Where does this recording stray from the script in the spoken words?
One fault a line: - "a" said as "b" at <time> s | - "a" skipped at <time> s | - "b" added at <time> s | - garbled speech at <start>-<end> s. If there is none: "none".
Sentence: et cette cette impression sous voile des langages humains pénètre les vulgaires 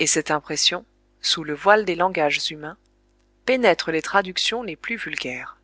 - "cette" skipped at 0.3 s
- "le" added at 1.4 s
- "traductions les plus" added at 4.0 s